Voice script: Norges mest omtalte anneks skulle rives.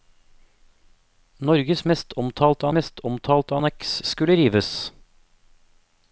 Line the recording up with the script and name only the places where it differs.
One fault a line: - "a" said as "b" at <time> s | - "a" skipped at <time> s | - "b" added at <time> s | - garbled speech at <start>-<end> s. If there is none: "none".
- "mest omtalte" added at 2.8 s